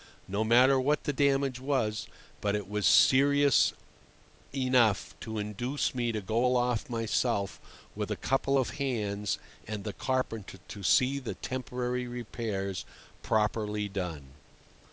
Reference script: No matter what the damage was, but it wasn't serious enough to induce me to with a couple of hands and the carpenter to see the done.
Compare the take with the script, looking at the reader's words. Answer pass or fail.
fail